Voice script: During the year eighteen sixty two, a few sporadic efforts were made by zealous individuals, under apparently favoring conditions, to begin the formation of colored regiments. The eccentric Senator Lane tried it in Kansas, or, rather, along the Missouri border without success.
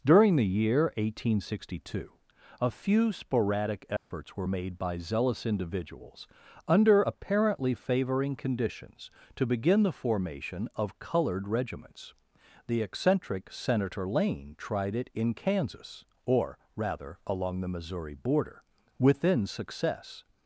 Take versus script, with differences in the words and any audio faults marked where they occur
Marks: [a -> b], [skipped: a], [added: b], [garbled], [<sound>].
During the year eighteen sixty two, a few sporadic efforts [dropout] were made by zealous individuals, under apparently favoring conditions, to begin the formation of colored regiments. The eccentric Senator Lane tried it in Kansas, or, rather, along the Missouri border [without -> within] success.